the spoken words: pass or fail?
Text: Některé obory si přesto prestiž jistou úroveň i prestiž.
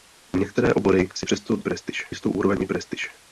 pass